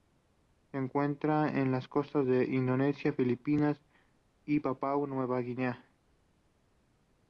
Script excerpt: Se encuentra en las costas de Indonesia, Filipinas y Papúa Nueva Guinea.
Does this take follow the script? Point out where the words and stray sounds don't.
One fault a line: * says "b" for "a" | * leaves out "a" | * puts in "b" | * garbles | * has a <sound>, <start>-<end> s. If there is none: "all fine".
all fine